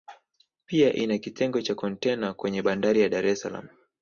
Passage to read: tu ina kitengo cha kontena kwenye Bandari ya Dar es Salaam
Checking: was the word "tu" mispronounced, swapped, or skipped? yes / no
yes